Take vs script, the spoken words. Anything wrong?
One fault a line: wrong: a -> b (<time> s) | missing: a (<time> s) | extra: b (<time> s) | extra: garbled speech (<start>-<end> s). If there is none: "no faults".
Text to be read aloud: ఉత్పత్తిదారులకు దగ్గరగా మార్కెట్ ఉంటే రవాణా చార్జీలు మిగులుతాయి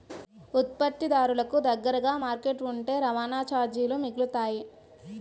no faults